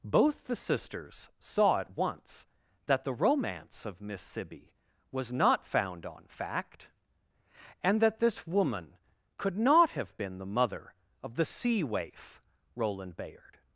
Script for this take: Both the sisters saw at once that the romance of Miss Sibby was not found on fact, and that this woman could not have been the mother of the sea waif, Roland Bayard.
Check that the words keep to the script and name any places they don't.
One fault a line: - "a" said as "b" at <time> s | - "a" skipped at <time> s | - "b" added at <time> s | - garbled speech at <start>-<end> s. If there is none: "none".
none